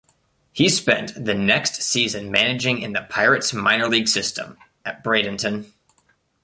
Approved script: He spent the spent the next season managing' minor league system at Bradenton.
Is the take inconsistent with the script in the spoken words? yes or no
yes